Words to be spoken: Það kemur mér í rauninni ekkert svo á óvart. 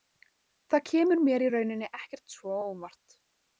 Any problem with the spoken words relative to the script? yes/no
no